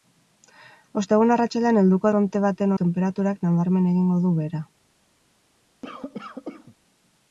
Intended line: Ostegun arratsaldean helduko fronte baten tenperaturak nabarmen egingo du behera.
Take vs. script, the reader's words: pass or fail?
pass